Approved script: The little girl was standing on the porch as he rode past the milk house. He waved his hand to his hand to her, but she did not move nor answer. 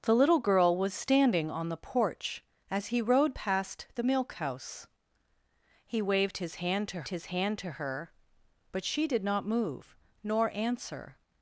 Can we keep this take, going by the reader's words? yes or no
yes